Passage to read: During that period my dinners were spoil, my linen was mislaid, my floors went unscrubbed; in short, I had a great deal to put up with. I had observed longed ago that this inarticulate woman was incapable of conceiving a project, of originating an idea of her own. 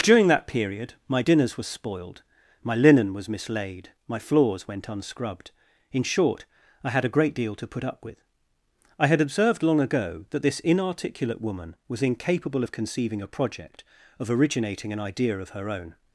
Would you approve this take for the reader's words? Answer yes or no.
no